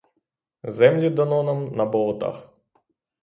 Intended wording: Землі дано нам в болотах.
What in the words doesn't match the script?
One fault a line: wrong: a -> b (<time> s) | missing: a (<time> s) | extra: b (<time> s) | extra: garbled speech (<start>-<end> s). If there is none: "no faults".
wrong: в -> на (1.8 s)